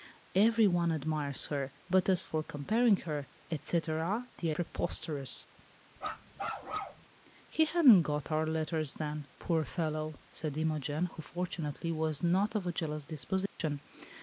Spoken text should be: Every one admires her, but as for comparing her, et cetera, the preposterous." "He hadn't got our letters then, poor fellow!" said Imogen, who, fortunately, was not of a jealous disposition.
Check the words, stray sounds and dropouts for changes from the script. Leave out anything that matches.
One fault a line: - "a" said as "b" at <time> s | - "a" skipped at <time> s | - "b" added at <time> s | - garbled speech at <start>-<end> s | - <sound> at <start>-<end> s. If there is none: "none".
- bark at 6.0-7.1 s
- dropout at 13.5-13.6 s